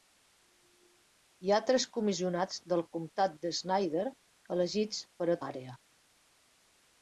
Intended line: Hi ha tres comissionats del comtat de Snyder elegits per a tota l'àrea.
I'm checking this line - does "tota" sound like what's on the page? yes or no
no